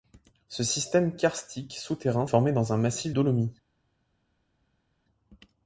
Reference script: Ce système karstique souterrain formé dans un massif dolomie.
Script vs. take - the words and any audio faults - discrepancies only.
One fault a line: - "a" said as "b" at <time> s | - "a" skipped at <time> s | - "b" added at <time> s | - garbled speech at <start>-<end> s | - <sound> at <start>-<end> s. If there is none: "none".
none